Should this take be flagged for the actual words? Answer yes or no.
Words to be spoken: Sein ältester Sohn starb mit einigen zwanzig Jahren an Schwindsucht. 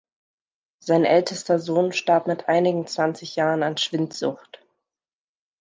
no